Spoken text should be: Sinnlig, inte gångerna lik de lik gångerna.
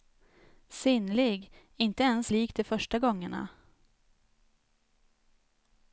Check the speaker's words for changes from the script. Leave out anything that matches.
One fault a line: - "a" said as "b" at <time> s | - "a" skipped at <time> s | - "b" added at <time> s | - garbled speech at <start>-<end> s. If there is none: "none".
- "gångerna" said as "ens" at 2.0 s
- "lik" said as "första" at 2.6 s